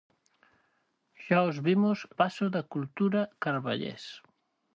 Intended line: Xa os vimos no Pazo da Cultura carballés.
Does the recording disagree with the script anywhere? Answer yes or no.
yes